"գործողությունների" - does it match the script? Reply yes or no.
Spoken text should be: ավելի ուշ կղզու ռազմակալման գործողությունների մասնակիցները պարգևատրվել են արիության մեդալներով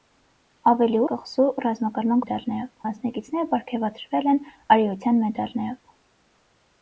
no